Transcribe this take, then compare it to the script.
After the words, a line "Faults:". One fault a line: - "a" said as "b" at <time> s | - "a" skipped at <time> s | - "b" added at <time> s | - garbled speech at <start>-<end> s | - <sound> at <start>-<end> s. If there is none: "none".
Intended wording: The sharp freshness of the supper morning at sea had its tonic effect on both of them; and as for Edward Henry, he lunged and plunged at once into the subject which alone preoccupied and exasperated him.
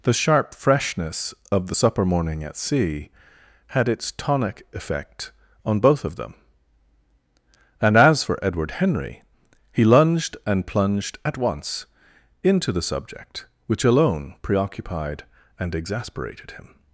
The sharp freshness of the supper morning at sea had its tonic effect on both of them; and as for Edward Henry, he lunged and plunged at once into the subject which alone preoccupied and exasperated him.
Faults:
none